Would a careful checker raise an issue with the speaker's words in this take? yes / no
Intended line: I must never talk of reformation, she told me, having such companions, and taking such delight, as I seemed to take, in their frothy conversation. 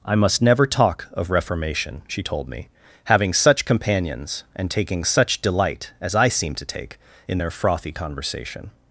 no